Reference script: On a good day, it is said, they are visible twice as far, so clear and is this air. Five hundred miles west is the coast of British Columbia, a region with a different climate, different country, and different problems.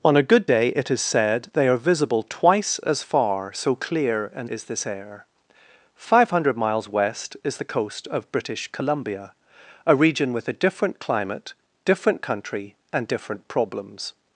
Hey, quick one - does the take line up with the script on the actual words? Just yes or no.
yes